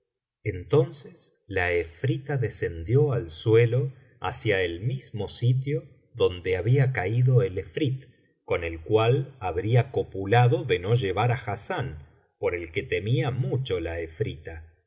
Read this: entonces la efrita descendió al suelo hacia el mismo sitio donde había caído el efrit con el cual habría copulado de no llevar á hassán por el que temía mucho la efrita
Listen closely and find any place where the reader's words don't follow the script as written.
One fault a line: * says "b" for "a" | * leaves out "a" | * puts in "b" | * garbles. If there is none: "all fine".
all fine